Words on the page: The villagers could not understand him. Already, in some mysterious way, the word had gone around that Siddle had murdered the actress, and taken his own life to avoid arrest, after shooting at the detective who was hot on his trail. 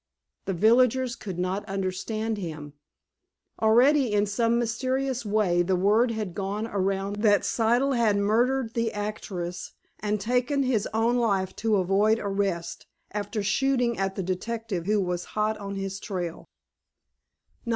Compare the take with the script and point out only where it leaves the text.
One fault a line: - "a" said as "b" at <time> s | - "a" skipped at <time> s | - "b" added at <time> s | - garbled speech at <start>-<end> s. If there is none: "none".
none